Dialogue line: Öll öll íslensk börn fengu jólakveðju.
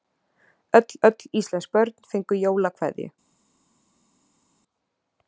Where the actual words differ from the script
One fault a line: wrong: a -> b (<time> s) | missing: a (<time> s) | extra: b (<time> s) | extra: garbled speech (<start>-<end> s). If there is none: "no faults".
no faults